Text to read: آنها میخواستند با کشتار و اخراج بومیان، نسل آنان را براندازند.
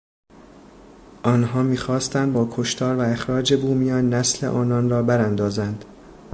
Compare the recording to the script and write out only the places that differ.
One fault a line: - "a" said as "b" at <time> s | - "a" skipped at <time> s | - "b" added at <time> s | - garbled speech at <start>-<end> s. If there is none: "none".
none